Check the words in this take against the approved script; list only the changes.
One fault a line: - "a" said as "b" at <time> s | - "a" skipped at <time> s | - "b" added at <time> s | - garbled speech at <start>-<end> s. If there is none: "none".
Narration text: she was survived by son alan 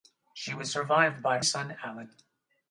none